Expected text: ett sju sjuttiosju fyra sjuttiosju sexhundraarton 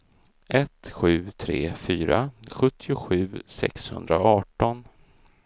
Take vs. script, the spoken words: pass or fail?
fail